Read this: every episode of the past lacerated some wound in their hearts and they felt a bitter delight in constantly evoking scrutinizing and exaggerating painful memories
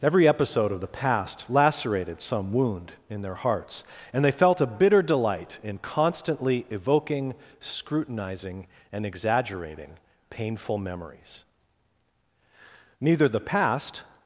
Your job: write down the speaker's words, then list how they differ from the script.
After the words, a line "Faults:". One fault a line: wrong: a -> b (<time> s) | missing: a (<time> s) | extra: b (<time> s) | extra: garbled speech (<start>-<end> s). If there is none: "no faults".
every episode of the past lacerated some wound in their hearts and they felt a bitter delight in constantly evoking scrutinizing and exaggerating painful memories neither the past
Faults:
extra: neither the past (13.0 s)